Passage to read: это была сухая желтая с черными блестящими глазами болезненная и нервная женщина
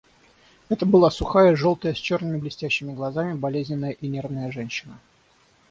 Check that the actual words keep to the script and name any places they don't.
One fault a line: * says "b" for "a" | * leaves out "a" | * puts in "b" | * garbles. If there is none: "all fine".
all fine